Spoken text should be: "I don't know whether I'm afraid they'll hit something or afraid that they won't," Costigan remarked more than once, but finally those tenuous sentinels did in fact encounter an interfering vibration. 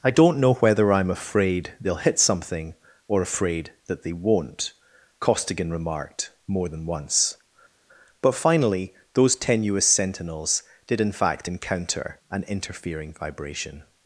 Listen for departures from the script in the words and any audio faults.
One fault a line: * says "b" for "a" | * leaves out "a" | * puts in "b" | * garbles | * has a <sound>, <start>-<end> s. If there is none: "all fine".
all fine